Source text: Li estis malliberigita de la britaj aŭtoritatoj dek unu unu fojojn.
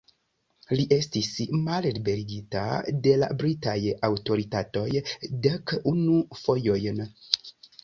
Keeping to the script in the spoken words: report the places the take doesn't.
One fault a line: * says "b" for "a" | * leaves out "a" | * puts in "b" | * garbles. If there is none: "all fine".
* leaves out "unu"